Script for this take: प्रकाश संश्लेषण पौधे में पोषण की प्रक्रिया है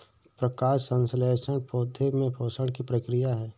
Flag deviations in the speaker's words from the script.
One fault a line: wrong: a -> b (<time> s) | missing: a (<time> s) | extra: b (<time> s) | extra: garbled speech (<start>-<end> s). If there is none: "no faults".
no faults